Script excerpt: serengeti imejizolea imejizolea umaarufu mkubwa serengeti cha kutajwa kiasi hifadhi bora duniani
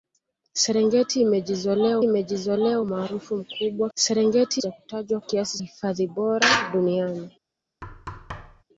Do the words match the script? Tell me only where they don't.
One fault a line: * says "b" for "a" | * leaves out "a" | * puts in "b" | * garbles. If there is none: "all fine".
all fine